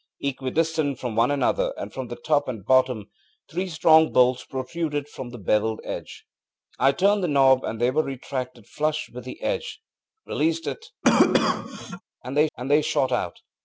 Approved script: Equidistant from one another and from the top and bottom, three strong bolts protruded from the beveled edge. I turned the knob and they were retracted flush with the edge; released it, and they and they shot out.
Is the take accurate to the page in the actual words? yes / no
yes